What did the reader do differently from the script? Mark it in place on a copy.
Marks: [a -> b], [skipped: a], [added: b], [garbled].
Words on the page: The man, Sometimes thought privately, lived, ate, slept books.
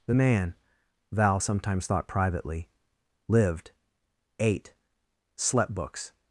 The man, [added: Val] Sometimes thought privately, lived, ate, slept books.